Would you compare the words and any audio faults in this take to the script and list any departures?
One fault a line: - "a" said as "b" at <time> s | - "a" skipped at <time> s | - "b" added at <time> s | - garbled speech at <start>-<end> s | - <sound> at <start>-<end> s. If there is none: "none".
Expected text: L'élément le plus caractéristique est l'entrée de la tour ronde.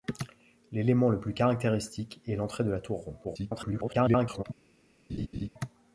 - garbled speech at 3.2-4.4 s
- laugh at 5.1-5.5 s